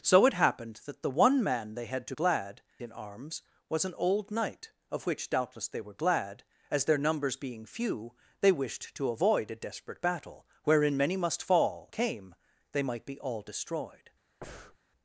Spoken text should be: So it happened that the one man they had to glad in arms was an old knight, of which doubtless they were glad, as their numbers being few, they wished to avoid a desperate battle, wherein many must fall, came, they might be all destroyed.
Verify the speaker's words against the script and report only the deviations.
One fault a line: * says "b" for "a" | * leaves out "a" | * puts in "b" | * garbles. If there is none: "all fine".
all fine